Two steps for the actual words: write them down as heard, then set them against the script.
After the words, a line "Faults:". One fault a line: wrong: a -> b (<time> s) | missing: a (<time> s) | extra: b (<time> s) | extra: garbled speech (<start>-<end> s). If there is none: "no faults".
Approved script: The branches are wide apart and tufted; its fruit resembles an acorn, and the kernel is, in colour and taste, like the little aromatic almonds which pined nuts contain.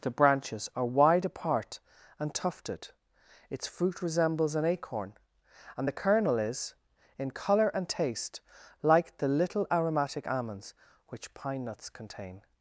The branches are wide apart and tufted; its fruit resembles an acorn, and the kernel is, in colour and taste, like the little aromatic almonds which pine nuts contain.
Faults:
wrong: pined -> pine (11.3 s)